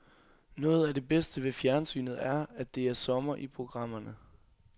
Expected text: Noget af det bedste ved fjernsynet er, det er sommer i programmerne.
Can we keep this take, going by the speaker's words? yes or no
no